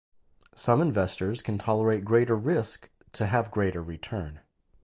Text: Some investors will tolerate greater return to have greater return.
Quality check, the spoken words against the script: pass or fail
fail